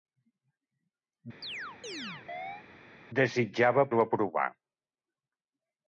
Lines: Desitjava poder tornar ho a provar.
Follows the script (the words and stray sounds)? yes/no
no